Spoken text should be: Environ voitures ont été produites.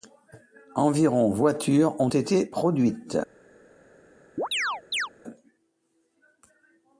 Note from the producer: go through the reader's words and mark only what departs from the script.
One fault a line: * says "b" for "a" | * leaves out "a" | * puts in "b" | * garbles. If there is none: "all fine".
all fine